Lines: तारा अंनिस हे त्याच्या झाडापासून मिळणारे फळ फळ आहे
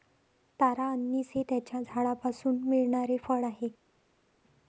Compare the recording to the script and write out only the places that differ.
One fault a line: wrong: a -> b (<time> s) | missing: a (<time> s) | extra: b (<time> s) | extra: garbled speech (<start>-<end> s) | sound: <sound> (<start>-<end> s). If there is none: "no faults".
missing: फळ (3.4 s)